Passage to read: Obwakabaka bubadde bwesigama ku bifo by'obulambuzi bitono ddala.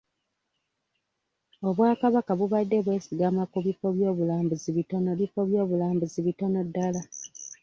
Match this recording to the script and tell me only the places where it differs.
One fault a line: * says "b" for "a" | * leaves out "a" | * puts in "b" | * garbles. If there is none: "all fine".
* puts in "bifo by'obulambuzi bitono"